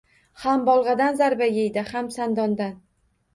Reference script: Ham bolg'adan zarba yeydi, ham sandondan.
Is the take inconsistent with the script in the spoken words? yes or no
no